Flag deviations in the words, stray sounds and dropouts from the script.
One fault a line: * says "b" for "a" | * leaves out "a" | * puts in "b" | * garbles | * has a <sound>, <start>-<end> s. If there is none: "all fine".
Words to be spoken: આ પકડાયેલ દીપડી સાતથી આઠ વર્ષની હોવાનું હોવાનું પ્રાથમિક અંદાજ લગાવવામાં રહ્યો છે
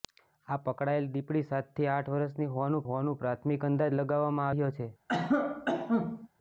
* has a cough, 5.1-6.3 s